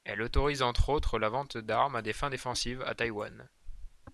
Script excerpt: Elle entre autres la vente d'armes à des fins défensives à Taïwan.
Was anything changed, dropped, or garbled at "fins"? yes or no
no